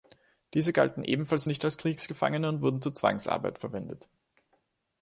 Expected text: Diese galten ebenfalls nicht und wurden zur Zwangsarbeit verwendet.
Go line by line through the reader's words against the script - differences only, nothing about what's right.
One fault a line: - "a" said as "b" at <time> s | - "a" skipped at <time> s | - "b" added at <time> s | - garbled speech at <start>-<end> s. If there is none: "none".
- "als Kriegsgefangene" added at 1.6 s